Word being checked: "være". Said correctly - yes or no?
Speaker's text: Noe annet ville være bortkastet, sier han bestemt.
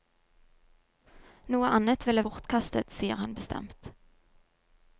no